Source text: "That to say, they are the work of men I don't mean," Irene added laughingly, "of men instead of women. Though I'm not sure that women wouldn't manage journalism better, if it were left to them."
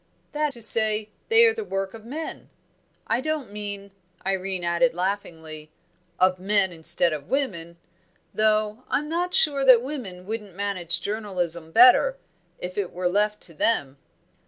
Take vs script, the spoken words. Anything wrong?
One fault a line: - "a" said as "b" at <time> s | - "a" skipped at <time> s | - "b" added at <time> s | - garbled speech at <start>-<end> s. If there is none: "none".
none